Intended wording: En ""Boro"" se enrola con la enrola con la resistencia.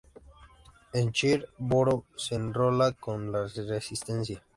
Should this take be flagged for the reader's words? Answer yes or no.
yes